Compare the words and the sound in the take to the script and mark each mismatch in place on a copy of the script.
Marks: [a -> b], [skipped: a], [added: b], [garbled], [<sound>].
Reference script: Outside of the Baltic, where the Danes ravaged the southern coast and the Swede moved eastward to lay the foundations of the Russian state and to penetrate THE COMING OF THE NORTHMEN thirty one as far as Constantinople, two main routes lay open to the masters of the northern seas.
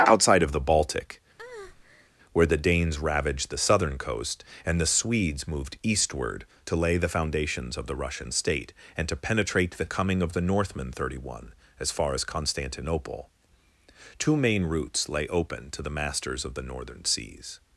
Outside of the Baltic, [breath] where the Danes ravaged the southern coast and the [Swede -> Swedes] moved eastward to lay the foundations of the Russian state and to penetrate THE COMING OF THE NORTHMEN thirty one as far as Constantinople, two main routes lay open to the masters of the northern seas.